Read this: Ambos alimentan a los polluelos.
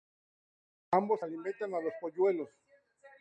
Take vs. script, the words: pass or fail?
pass